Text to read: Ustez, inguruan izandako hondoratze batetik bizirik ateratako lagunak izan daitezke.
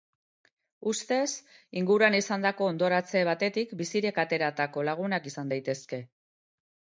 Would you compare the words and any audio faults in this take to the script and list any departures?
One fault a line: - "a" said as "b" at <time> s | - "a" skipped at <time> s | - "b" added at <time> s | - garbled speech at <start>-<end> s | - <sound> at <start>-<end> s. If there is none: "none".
none